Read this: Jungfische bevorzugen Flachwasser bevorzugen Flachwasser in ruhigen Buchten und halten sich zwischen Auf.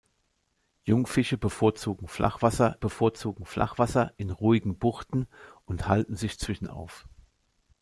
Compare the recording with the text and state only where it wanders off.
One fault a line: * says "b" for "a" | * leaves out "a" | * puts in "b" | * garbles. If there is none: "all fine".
all fine